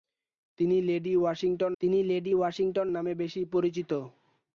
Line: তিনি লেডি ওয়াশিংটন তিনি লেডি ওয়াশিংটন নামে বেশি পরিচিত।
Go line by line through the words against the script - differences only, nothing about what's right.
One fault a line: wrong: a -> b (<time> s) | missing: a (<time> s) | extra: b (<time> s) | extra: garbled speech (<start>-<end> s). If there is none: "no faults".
no faults